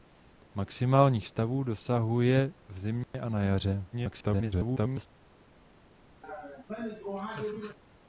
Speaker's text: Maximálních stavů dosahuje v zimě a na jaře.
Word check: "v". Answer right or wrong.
right